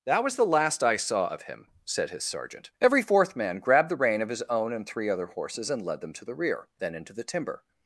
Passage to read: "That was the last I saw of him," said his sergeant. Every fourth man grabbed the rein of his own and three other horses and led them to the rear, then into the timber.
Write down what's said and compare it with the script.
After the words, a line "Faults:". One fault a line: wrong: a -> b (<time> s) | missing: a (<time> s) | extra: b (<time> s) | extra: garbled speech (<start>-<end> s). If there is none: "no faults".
"That was the last I saw of him," said his sergeant. Every fourth man grabbed the rein of his own and three other horses and led them to the rear, then into the timber.
Faults:
no faults